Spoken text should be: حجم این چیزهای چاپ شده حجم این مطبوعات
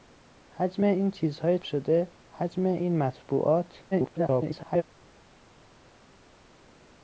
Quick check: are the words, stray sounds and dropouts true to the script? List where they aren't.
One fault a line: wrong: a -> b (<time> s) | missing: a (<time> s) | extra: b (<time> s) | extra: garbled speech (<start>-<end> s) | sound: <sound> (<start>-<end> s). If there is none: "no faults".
missing: چاپ (1.6 s)
extra: garbled speech (3.9-4.8 s)